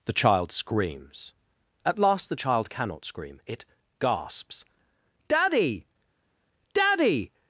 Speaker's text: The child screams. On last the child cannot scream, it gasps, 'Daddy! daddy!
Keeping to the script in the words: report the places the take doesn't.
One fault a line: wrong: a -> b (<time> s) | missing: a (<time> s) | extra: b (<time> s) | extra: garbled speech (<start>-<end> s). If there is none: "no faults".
wrong: On -> At (1.9 s)